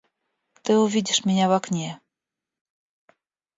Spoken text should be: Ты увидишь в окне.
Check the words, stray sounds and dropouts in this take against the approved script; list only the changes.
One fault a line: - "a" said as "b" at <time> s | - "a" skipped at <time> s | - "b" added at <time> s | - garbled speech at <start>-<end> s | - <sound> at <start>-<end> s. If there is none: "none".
- "меня" added at 1.2 s